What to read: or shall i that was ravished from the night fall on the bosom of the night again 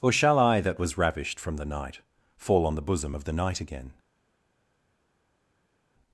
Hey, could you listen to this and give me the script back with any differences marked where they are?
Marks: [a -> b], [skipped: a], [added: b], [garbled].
or shall i that was ravished from the night fall on the bosom of the night again